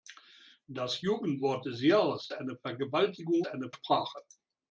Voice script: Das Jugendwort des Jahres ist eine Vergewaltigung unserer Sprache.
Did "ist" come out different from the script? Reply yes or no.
yes